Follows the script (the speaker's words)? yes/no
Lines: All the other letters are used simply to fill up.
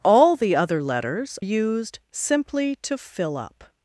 no